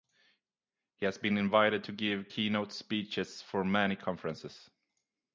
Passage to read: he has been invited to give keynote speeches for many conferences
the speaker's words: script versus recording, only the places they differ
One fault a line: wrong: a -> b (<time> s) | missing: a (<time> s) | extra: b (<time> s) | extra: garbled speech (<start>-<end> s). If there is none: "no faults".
no faults